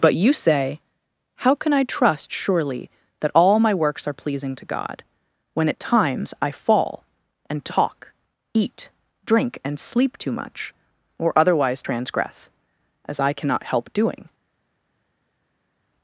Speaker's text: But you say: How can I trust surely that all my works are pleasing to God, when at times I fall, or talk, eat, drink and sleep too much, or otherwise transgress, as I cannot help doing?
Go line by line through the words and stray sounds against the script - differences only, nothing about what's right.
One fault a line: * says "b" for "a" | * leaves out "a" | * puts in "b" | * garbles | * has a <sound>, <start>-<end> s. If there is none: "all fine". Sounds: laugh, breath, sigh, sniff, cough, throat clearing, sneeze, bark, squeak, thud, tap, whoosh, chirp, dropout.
* says "and" for "or"